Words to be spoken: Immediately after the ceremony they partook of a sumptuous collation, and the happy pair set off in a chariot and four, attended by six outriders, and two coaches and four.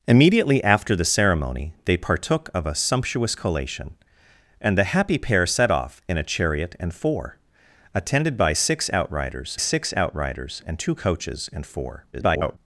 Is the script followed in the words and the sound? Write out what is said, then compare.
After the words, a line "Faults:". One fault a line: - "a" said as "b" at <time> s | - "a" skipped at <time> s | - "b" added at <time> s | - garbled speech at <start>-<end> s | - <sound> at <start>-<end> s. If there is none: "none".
Immediately after the ceremony they partook of a sumptuous collation, and the happy pair set off in a chariot and four, attended by six outriders six outriders, and two coaches and four. [garbled]
Faults:
- "six outriders" added at 9.6 s
- garbled speech at 12.1-12.6 s